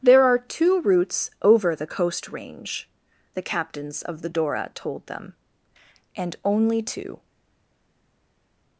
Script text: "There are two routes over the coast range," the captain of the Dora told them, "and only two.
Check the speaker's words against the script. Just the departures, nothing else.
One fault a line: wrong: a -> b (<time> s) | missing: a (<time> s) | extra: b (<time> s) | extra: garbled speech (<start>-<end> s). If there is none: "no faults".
wrong: captain -> captains (3.4 s)